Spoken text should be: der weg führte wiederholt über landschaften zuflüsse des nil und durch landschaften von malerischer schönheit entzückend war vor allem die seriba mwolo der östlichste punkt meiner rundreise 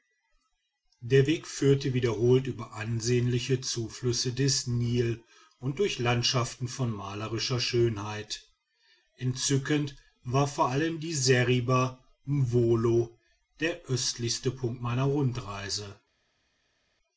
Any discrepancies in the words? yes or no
yes